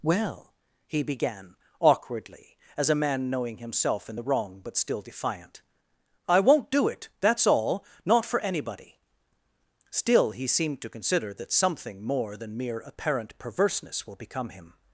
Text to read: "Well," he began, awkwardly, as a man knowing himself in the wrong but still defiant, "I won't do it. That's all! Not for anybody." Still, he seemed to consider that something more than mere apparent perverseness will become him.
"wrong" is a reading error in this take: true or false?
false